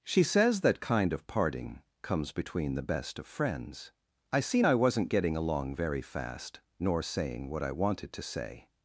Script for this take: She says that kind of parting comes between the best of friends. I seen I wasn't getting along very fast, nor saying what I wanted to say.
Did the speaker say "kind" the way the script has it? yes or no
yes